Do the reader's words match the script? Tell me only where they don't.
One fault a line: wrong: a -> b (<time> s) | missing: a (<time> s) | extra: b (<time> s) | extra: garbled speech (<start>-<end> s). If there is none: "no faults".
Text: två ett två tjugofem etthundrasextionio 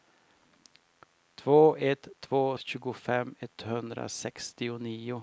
no faults